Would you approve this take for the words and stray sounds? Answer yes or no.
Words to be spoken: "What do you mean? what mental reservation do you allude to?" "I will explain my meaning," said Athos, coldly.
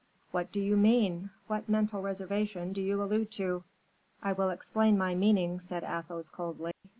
no